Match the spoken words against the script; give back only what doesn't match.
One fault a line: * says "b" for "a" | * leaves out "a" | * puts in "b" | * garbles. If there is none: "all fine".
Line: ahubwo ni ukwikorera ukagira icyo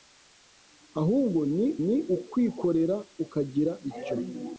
* puts in "ni"